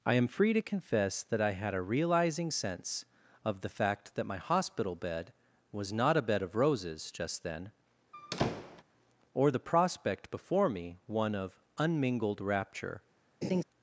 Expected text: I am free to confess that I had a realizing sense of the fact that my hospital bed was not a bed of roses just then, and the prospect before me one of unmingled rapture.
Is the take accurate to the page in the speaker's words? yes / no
no